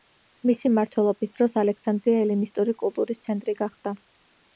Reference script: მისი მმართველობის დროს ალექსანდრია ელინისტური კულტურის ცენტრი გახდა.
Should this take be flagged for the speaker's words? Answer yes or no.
no